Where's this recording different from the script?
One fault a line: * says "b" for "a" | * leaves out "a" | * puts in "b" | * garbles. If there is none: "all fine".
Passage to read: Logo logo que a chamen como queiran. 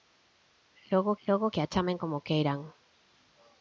all fine